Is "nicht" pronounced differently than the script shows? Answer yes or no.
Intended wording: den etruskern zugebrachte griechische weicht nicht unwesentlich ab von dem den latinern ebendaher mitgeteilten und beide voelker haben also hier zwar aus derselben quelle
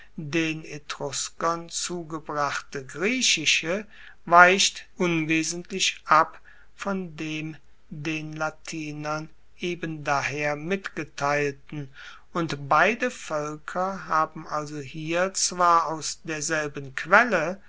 yes